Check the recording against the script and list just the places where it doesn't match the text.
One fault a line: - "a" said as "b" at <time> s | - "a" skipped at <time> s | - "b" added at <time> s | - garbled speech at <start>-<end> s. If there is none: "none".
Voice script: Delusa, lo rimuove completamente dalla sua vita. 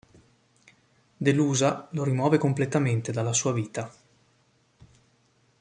none